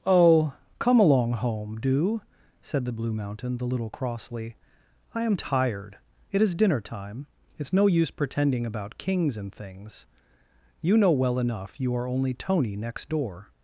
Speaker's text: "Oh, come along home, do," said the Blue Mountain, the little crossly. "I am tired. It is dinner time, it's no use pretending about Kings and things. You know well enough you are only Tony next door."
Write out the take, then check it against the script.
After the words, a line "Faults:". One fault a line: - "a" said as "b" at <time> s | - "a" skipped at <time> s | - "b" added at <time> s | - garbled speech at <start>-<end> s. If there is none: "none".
"Oh, come along home, do," said the Blue Mountain, the little crossly. "I am tired. It is dinner time, it's no use pretending about Kings and things. You know well enough you are only Tony next door."
Faults:
none